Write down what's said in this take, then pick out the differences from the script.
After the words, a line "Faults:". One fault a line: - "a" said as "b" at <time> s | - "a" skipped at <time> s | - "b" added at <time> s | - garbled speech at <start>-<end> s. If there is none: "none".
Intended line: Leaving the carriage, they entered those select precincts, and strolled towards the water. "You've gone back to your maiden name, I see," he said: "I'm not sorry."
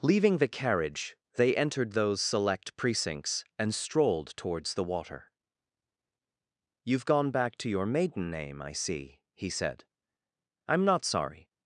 Leaving the carriage, they entered those select precincts, and strolled towards the water. "You've gone back to your maiden name, I see," he said: "I'm not sorry."
Faults:
none